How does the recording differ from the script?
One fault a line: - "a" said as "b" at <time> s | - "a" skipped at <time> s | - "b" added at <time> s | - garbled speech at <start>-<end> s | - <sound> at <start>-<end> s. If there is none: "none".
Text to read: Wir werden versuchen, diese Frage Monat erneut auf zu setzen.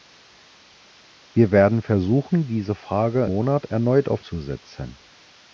none